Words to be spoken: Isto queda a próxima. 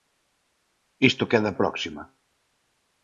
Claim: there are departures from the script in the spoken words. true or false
false